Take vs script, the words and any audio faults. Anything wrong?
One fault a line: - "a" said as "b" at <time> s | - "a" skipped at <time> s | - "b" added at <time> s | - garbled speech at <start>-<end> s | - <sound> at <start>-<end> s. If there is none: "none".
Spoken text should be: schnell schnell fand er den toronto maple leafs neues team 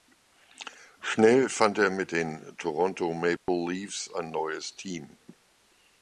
- "schnell" skipped at 1.5 s
- "mit" added at 1.9 s
- dropout at 3.4-3.5 s
- "ein" added at 4.1 s